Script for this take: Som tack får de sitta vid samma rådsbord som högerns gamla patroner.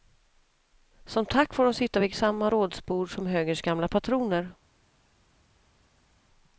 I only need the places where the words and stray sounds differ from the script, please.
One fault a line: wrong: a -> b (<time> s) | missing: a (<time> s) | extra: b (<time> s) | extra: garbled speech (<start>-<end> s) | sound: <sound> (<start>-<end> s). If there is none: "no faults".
no faults